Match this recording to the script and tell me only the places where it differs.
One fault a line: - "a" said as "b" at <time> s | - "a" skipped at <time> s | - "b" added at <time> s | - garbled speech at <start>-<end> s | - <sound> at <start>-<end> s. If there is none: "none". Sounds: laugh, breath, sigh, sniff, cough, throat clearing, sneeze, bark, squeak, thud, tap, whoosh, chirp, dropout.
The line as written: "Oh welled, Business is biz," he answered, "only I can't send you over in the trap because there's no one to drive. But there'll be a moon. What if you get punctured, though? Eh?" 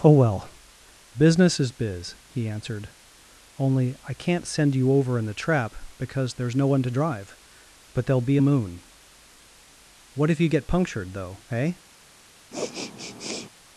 - "welled" said as "well" at 0.1 s
- sniff at 12.5-13.5 s